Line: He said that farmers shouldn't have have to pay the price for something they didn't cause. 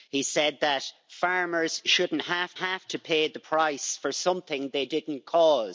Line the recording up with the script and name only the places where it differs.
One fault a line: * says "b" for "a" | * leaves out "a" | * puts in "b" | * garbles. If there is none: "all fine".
all fine